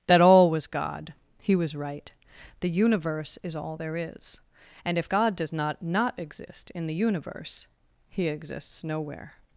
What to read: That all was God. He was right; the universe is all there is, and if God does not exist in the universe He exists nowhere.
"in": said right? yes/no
yes